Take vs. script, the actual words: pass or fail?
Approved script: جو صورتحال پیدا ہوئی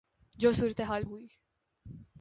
fail